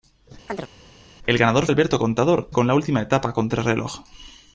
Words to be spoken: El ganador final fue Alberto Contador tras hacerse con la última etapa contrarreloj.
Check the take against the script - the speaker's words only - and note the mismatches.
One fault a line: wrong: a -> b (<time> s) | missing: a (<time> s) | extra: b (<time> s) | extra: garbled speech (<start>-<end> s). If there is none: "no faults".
missing: final fue (1.7 s)
missing: tras hacerse (2.5 s)